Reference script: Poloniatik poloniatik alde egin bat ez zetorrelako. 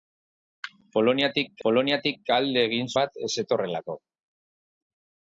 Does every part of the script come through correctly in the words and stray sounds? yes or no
yes